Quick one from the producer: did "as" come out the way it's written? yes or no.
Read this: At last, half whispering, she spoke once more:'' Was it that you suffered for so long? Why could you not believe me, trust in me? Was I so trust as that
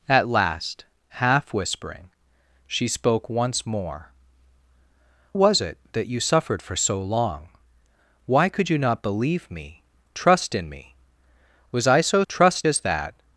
yes